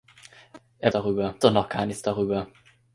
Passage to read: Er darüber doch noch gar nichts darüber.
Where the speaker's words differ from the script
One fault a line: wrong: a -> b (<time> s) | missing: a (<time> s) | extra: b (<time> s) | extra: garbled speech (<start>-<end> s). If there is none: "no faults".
no faults